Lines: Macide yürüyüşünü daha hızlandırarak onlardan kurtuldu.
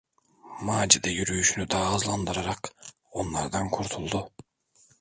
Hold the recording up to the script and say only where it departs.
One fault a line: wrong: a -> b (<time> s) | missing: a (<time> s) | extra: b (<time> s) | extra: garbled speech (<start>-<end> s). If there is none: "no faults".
no faults